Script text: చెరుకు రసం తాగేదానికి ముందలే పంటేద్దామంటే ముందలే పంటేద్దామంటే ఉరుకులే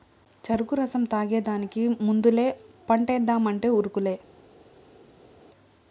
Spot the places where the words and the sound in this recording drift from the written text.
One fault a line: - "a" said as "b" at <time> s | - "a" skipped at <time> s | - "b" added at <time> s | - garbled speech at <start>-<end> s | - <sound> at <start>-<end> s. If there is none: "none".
- "ముందలే పంటేద్దామంటే" skipped at 3.7 s